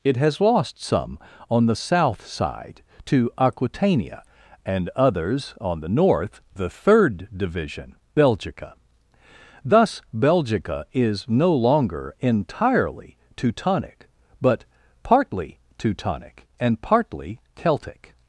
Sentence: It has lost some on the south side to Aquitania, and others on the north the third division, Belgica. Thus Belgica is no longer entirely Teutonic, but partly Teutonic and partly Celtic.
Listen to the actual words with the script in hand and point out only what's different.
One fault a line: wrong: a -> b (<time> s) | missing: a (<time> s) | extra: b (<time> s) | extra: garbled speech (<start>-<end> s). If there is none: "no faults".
no faults